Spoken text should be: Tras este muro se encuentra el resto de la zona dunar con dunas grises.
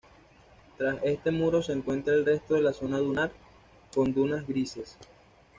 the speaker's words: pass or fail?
pass